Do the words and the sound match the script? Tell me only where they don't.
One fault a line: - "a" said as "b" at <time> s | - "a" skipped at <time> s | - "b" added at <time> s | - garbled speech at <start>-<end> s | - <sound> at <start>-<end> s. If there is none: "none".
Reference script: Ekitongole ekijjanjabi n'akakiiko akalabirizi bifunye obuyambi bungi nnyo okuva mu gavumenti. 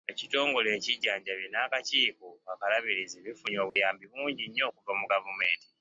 - dropout at 3.7-3.8 s